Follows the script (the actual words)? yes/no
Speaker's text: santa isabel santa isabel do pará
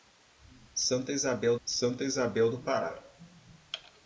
yes